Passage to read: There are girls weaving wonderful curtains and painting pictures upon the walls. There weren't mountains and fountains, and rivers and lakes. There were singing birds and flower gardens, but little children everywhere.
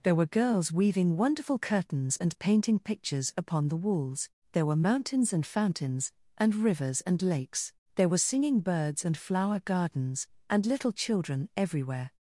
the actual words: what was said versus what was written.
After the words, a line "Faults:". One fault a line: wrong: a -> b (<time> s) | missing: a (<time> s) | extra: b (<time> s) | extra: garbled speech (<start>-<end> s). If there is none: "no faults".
There were girls weaving wonderful curtains and painting pictures upon the walls. There were mountains and fountains, and rivers and lakes. There were singing birds and flower gardens, and little children everywhere.
Faults:
wrong: are -> were (0.1 s)
wrong: weren't -> were (4.7 s)
wrong: but -> and (10.5 s)